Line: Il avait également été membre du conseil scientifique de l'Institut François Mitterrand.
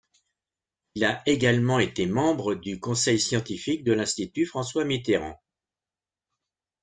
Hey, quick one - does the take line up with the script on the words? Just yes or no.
no